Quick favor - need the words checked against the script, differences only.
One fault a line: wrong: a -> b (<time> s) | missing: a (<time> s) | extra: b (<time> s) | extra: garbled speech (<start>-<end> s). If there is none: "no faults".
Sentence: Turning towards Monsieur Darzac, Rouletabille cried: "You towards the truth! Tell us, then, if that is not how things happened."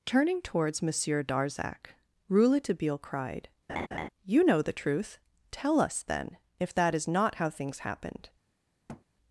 wrong: towards -> know (4.4 s)